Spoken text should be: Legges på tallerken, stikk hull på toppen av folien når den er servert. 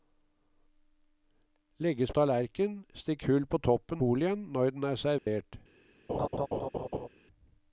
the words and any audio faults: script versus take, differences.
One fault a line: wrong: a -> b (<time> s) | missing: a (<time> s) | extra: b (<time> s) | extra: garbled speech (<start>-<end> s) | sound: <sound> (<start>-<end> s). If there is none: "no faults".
missing: på (2.1 s)
missing: av (4.0 s)
sound: dropout (5.2-5.3 s)
sound: laugh (6.1-7.1 s)